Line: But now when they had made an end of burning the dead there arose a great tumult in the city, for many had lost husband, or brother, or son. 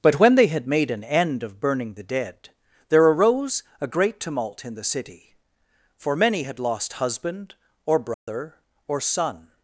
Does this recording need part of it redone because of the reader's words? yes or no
yes